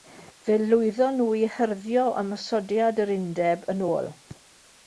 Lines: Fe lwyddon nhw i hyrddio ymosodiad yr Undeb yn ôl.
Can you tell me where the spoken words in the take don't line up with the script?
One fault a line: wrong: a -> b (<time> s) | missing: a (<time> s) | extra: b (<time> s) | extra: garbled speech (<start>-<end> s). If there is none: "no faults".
no faults